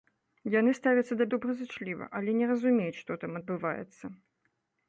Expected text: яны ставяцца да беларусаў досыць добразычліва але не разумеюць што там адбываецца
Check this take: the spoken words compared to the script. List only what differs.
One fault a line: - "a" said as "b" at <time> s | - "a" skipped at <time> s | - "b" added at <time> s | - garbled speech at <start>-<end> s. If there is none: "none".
- "беларусаў досыць" skipped at 1.3 s